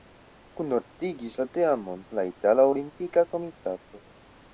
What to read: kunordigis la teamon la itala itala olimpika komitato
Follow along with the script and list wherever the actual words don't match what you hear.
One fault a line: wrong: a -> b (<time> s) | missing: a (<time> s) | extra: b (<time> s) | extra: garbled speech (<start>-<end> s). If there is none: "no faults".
missing: itala (2.7 s)